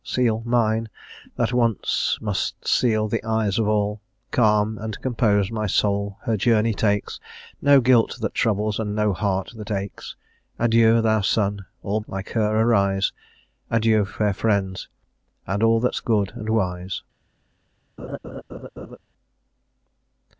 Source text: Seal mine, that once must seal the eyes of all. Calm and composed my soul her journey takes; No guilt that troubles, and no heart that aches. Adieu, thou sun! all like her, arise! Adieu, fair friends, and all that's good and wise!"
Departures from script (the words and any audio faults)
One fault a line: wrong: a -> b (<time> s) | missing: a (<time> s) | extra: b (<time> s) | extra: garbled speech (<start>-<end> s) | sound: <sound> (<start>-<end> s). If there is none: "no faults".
sound: laugh (18.0-19.0 s)